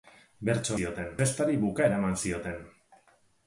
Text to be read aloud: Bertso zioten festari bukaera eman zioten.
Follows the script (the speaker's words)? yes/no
yes